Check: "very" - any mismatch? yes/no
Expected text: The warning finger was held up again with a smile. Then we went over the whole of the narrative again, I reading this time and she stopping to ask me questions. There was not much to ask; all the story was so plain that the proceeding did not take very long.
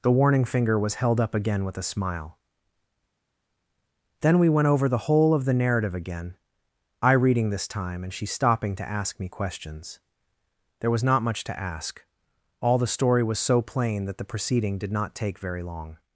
no